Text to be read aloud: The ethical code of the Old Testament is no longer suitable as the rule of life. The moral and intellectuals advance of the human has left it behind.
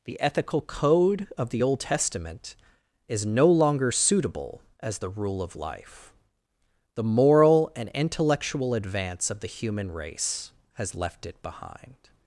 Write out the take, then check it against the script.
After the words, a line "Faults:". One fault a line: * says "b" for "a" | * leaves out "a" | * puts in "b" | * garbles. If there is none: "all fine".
The ethical code of the Old Testament is no longer suitable as the rule of life. The moral and intellectual advance of the human race has left it behind.
Faults:
* says "intellectual" for "intellectuals"
* puts in "race"